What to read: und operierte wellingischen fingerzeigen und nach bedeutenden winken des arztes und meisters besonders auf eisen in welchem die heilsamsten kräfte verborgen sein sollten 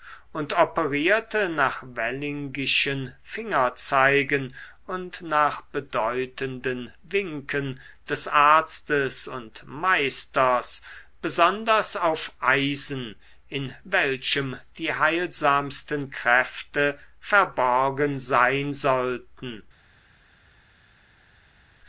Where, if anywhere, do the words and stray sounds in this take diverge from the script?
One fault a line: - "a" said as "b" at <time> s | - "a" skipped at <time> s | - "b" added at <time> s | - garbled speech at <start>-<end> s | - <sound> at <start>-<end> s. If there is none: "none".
- "nach" added at 1.5 s